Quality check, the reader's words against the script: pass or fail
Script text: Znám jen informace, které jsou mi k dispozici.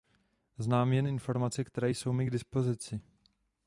pass